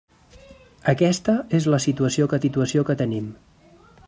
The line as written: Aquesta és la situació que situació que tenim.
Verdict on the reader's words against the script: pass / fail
pass